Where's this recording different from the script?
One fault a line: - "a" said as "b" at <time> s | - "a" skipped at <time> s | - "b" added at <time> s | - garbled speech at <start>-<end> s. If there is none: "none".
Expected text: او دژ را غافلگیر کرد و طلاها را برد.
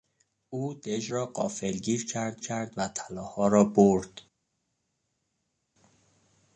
- "کرد" added at 2.4 s